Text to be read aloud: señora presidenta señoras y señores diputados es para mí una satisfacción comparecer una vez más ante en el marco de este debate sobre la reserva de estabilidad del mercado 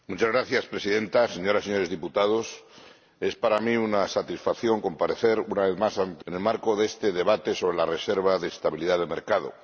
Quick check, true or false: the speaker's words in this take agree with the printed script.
true